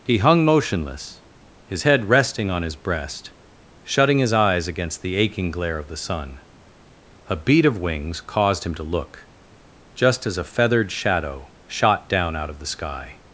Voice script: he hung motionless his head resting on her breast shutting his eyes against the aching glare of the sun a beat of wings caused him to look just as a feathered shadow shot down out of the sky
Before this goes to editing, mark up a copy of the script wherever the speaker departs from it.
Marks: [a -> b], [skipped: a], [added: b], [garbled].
he hung motionless his head resting on [her -> his] breast shutting his eyes against the aching glare of the sun a beat of wings caused him to look just as a feathered shadow shot down out of the sky